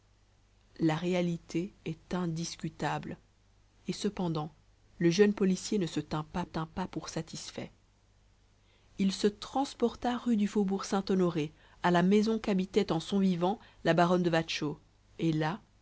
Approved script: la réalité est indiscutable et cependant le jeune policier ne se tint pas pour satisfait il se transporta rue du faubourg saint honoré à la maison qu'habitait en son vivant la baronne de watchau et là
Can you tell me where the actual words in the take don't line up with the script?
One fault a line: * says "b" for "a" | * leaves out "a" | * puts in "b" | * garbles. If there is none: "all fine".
* puts in "tint pas"